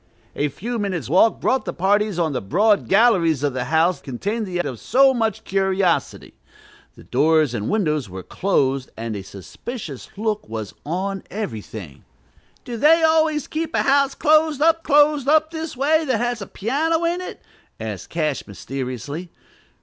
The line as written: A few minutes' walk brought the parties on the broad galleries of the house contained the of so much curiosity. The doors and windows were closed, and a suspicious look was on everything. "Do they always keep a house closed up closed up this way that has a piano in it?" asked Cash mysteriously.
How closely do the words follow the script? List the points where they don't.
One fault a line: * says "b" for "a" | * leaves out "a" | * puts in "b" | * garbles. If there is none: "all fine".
all fine